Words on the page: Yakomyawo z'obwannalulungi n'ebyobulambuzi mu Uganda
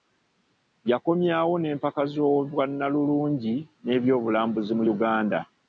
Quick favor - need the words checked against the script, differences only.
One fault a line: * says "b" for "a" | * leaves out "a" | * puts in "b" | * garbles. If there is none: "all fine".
* puts in "n'empaka"